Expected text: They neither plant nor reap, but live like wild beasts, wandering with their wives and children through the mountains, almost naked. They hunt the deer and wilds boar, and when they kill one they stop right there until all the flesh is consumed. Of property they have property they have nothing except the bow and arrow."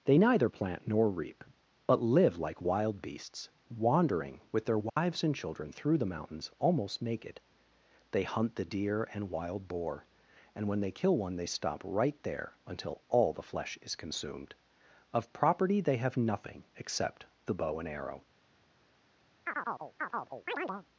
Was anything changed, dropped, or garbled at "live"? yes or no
no